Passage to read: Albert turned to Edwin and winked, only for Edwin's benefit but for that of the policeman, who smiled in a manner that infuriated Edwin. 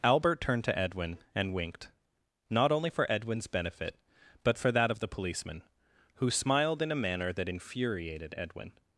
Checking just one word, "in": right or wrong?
right